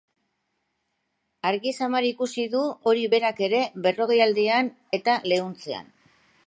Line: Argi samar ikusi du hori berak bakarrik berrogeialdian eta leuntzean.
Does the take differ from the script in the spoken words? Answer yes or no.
yes